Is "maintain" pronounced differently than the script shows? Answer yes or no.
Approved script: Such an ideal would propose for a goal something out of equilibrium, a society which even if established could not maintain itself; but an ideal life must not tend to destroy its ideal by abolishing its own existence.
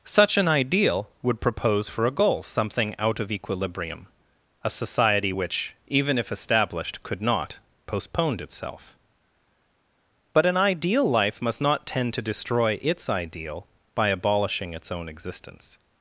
yes